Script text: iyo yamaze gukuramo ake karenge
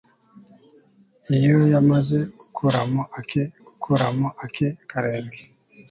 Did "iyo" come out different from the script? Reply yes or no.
no